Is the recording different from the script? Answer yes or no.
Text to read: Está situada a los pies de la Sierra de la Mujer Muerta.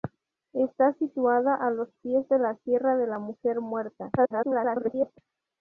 yes